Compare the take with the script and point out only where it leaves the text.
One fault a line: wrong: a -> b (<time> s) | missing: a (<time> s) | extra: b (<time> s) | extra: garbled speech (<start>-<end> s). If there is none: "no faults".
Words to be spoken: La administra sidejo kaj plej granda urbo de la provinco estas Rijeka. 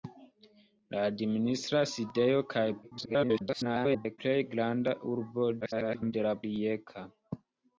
extra: garbled speech (2.8-4.2 s)
extra: garbled speech (5.6-6.1 s)
missing: provinco estas (6.4 s)